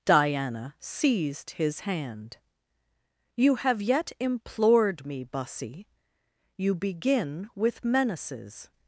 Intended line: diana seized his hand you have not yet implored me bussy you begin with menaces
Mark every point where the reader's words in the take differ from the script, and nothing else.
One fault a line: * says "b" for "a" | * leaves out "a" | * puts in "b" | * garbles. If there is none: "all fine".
* leaves out "not"